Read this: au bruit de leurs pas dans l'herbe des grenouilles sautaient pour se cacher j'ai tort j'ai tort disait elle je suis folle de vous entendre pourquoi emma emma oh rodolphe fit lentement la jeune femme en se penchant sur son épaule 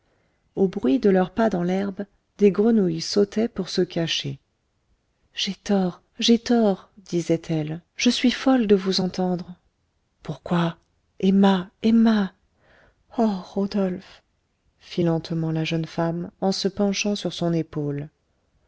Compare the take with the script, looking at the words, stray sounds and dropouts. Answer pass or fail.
pass